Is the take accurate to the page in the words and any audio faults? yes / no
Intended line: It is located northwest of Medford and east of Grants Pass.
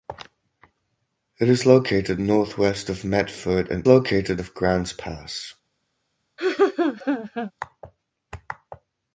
no